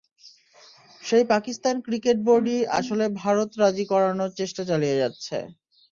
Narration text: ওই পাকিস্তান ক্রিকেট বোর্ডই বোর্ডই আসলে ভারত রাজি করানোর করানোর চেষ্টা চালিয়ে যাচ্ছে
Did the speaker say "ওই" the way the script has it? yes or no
no